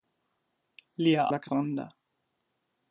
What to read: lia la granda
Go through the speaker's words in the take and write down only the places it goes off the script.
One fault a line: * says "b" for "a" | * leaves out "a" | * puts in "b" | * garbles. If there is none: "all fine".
all fine